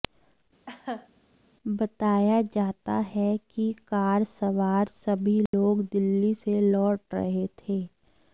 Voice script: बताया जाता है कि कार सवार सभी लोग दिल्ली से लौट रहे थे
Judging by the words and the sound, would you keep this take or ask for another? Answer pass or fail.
fail